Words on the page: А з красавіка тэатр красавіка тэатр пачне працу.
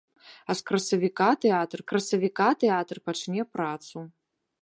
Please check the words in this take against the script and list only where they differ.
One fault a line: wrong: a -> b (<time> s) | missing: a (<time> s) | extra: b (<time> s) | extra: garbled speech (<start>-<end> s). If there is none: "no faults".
no faults